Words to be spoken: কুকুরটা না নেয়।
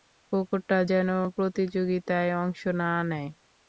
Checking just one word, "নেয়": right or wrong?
right